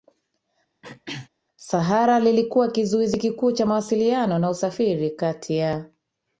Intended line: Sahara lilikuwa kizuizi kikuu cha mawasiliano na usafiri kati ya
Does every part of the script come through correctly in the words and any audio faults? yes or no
no